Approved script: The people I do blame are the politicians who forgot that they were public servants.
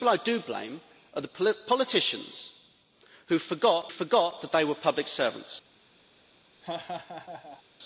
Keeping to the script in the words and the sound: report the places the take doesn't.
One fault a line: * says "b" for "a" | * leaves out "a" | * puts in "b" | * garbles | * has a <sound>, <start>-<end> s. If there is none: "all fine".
* puts in "forgot"
* has a laugh, 6.6-7.6 s